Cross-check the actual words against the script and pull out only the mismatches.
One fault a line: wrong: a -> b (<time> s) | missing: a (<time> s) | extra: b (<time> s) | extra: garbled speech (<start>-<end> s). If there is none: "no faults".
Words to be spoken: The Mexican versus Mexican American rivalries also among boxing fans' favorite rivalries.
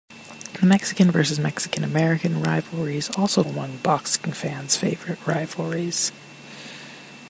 no faults